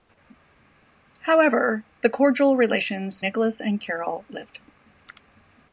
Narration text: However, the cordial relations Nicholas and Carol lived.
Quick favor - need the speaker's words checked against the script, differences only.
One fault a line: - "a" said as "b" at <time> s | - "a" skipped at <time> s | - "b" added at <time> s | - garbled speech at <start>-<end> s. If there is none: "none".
none